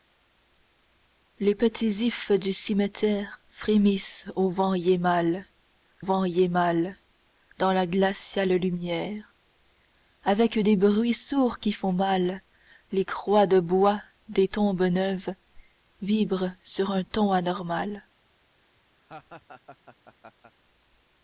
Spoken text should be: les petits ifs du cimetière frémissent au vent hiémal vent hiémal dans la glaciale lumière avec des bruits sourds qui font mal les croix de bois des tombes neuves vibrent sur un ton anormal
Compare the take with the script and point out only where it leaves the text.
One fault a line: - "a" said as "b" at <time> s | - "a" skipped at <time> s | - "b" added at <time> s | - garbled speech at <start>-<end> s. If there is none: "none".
none